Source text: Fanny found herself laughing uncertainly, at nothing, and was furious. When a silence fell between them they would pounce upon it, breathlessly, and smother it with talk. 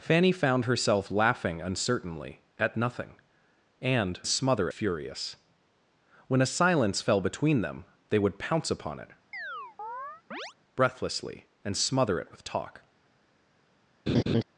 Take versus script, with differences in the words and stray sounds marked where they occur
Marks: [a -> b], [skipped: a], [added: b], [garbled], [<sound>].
Fanny found herself laughing uncertainly, at nothing, and [was -> smother] furious. When a silence fell between them they would pounce upon it, [chirp] breathlessly, and smother it with talk. [laugh]